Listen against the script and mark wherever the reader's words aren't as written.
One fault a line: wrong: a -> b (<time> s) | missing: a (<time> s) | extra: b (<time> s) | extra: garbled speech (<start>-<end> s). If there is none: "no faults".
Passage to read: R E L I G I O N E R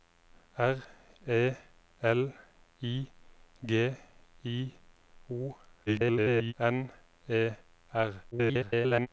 extra: garbled speech (5.9-6.5 s)
extra: garbled speech (8.3-9.1 s)